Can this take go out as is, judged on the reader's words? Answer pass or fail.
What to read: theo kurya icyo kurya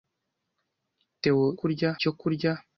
pass